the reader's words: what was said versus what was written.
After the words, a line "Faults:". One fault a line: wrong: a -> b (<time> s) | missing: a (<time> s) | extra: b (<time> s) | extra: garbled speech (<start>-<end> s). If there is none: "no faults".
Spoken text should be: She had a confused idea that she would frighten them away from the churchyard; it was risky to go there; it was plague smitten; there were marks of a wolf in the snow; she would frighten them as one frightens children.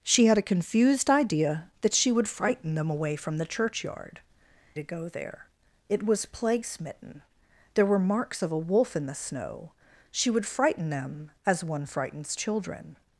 She had a confused idea that she would frighten them away from the churchyard; to go there; it was plague smitten; there were marks of a wolf in the snow; she would frighten them as one frightens children.
Faults:
missing: it was risky (4.2 s)